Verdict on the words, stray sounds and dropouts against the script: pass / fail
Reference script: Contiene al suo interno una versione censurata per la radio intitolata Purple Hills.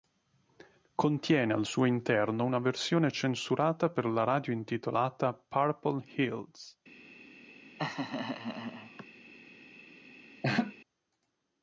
fail